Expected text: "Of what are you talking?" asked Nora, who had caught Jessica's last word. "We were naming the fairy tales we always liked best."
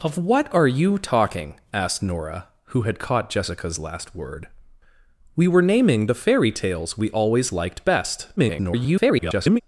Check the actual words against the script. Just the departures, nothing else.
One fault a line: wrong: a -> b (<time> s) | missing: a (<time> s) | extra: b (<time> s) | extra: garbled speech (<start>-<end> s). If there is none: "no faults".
extra: garbled speech (8.4-9.6 s)